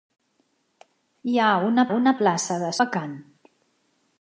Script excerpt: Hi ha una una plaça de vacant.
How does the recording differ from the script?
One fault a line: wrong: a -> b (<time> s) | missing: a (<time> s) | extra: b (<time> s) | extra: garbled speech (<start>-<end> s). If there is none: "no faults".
no faults